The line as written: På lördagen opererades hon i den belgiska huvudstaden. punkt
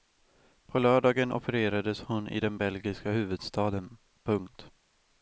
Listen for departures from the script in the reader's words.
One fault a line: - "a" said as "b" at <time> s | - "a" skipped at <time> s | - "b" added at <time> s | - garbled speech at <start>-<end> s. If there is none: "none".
none